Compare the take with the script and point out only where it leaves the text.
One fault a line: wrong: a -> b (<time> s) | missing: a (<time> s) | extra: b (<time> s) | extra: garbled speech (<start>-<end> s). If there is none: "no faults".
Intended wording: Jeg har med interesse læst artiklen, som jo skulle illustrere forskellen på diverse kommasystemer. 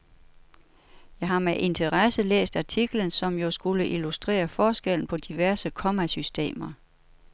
no faults